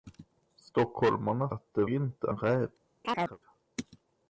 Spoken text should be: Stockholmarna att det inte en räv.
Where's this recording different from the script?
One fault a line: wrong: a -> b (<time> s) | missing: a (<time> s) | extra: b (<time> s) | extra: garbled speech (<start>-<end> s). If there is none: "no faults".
no faults